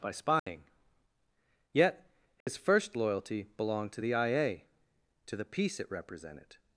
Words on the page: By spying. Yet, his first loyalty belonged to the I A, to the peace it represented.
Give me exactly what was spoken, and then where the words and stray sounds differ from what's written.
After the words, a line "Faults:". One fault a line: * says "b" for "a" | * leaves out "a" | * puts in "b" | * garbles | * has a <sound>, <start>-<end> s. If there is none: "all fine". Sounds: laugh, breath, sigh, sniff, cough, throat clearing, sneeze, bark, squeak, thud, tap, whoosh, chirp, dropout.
By spying. Yet, his first loyalty belonged to the I A, to the peace it represented.
Faults:
* has a dropout, 0.4-0.5 s
* has a dropout, 2.4-2.5 s